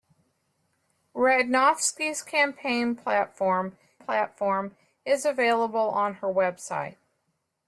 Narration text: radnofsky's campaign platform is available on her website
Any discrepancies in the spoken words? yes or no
yes